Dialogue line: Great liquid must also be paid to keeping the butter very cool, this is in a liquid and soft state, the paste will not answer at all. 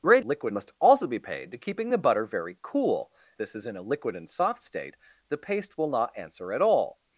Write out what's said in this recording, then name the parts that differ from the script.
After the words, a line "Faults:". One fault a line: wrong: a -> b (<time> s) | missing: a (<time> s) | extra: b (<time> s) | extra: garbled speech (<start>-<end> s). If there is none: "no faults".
Great liquid must also be paid to keeping the butter very cool, this is in a liquid and soft state, the paste will not answer at all.
Faults:
no faults